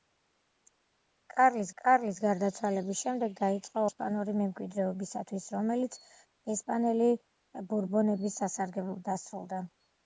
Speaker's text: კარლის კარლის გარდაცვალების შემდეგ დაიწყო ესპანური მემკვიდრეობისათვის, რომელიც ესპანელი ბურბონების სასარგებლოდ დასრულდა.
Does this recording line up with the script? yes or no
yes